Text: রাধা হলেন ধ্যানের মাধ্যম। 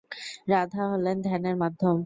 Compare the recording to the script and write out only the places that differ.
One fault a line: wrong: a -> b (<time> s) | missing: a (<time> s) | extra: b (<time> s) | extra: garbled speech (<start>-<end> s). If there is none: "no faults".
no faults